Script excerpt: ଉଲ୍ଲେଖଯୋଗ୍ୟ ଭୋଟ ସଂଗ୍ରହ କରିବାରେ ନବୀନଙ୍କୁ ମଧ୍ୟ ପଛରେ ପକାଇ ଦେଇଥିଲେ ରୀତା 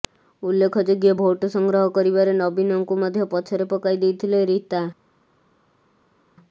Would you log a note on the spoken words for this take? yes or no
no